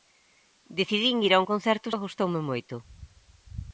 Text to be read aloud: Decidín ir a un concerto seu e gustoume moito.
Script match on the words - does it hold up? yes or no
no